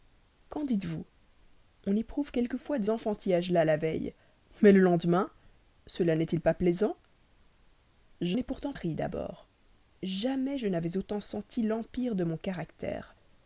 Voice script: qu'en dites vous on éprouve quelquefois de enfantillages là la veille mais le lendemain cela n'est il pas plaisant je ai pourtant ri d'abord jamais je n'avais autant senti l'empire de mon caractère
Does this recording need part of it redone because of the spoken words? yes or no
no